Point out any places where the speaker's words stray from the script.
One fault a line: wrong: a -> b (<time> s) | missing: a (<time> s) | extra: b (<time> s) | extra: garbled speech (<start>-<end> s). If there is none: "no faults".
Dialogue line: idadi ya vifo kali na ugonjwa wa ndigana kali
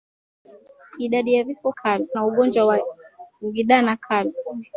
no faults